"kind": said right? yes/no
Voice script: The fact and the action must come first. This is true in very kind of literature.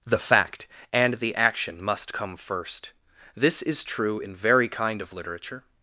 yes